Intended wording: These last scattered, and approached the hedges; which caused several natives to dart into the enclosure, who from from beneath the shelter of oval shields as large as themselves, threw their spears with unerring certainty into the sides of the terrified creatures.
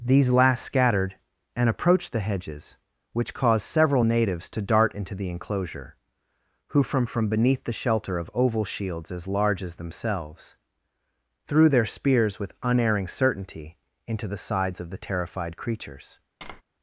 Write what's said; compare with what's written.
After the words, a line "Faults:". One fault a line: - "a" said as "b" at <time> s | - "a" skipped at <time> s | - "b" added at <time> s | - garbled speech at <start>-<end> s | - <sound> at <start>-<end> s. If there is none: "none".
These last scattered, and approached the hedges; which caused several natives to dart into the enclosure, who from from beneath the shelter of oval shields as large as themselves, threw their spears with unerring certainty into the sides of the terrified creatures.
Faults:
- tap at 16.4-16.6 s